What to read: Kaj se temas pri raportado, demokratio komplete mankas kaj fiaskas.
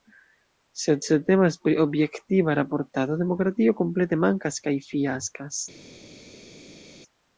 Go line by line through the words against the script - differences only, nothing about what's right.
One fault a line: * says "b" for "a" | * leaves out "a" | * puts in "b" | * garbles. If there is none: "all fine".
* says "Sed" for "Kaj"
* puts in "objektiva"